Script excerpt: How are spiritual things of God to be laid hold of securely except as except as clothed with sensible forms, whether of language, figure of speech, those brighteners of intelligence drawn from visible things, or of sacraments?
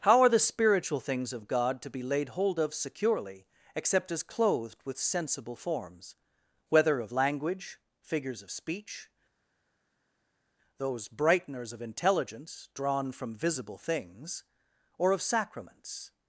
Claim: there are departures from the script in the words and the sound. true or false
true